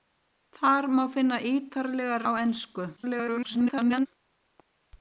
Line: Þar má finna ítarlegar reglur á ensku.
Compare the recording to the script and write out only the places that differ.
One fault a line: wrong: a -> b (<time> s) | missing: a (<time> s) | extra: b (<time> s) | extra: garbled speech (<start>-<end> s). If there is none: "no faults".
missing: reglur (2.2 s)
extra: garbled speech (3.0-4.1 s)